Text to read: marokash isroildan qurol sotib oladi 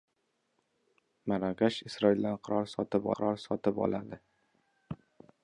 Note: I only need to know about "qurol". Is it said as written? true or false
true